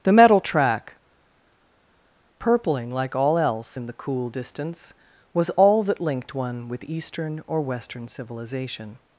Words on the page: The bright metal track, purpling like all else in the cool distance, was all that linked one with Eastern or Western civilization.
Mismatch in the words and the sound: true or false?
true